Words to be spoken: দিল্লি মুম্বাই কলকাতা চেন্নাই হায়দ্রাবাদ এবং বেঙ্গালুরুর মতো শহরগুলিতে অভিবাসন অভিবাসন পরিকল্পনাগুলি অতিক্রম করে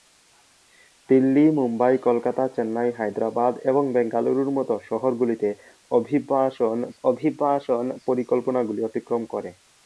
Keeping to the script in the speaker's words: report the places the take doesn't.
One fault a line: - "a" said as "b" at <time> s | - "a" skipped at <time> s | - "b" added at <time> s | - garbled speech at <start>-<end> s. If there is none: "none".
none